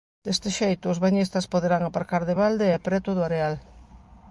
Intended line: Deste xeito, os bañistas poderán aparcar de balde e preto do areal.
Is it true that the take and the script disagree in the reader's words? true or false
false